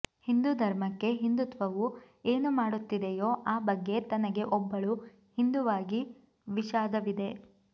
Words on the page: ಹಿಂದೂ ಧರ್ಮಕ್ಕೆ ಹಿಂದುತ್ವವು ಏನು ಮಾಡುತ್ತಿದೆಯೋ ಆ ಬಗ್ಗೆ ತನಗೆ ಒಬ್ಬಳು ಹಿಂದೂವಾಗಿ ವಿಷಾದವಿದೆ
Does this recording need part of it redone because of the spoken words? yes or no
no